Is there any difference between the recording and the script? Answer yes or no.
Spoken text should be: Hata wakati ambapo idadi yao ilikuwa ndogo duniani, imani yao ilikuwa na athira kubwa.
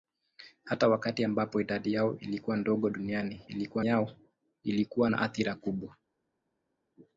yes